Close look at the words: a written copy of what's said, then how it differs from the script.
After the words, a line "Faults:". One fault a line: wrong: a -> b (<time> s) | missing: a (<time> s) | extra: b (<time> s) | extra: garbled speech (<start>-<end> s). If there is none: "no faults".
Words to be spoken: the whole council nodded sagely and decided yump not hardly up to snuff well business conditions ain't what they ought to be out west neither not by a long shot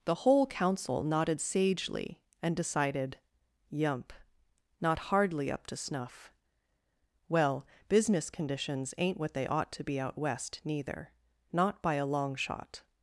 the whole council nodded sagely and decided yump not hardly up to snuff well business conditions ain't what they ought to be out west neither not by a long shot
Faults:
no faults